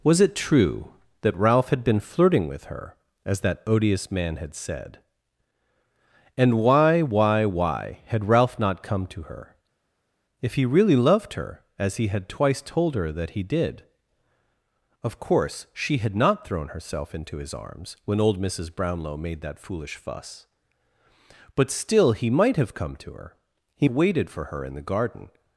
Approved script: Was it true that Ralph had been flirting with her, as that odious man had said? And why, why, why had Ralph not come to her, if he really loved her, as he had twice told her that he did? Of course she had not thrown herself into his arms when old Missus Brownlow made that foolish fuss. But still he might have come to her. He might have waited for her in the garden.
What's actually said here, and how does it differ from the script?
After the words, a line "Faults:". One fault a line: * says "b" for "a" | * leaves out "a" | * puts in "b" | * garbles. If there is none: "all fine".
Was it true that Ralph had been flirting with her, as that odious man had said? And why, why, why had Ralph not come to her, if he really loved her, as he had twice told her that he did? Of course she had not thrown herself into his arms when old Missus Brownlow made that foolish fuss. But still he might have come to her. He waited for her in the garden.
Faults:
* leaves out "might have"